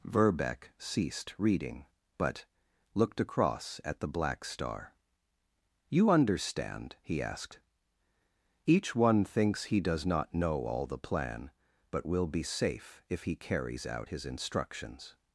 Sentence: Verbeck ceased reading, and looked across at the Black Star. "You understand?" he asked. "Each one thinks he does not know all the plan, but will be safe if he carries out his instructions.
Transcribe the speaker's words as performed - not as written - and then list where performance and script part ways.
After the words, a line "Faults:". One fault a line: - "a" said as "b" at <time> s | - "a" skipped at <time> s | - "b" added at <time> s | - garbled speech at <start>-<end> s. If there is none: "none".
Verbeck ceased reading, but looked across at the Black Star. "You understand?" he asked. "Each one thinks he does not know all the plan, but will be safe if he carries out his instructions.
Faults:
- "and" said as "but" at 2.2 s